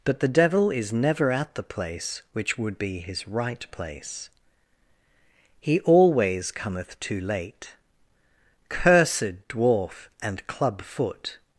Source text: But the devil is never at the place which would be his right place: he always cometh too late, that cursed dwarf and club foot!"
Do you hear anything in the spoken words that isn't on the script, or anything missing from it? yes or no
yes